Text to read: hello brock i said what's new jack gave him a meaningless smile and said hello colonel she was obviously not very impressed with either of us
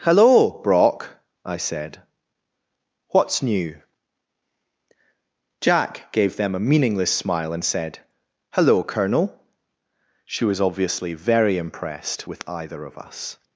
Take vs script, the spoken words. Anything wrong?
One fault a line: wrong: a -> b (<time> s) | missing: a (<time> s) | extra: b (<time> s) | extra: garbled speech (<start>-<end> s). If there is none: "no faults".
wrong: him -> them (6.4 s)
missing: not (11.1 s)